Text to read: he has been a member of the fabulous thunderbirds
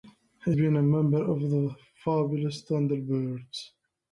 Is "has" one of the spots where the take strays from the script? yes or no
yes